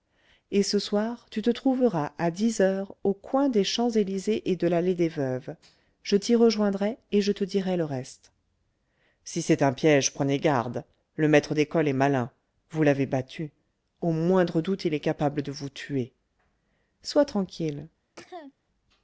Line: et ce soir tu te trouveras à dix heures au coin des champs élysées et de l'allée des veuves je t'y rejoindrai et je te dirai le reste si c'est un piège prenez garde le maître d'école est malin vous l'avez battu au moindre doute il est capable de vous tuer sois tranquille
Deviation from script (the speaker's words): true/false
false